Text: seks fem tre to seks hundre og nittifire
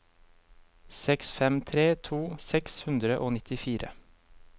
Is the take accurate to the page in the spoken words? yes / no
yes